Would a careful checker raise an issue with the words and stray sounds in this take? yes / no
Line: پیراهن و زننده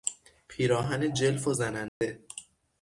yes